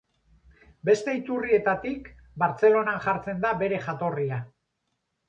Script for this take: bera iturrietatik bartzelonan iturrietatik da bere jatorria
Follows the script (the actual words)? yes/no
no